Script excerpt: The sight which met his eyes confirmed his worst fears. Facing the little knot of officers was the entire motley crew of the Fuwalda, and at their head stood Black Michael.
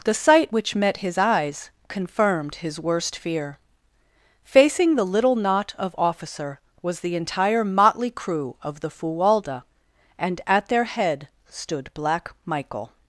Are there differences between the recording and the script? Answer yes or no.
yes